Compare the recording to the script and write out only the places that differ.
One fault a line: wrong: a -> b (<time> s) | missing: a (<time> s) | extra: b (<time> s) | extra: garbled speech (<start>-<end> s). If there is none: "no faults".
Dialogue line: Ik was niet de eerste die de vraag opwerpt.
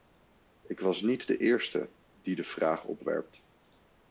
no faults